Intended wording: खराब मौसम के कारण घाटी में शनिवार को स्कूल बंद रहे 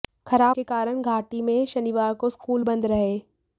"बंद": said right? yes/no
yes